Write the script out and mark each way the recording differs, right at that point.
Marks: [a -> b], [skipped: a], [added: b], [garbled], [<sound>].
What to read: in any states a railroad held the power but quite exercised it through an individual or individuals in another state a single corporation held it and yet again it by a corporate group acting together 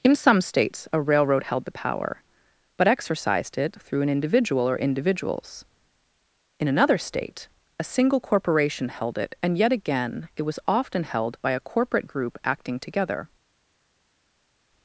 in [any -> some] states a railroad held the power but [skipped: quite] exercised it through an individual or individuals in another state a single corporation held it and yet again it [added: was often held] by a corporate group acting together